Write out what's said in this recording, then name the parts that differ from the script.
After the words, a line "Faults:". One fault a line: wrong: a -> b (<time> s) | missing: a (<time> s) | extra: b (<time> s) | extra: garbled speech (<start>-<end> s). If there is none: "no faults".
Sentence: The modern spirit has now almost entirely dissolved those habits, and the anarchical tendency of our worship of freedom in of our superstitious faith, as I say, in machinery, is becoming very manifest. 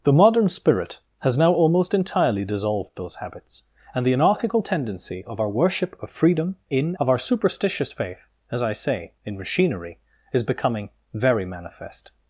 The modern spirit has now almost entirely dissolved those habits, and the anarchical tendency of our worship of freedom in of our superstitious faith, as I say, in machinery, is becoming very manifest.
Faults:
no faults